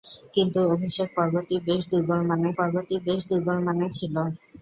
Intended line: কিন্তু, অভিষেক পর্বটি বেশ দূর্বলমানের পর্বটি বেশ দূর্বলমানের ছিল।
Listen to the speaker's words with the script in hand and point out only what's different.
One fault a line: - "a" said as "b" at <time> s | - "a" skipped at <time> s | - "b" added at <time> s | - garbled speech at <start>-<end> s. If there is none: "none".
none